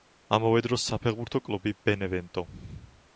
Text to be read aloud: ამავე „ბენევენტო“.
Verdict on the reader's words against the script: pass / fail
fail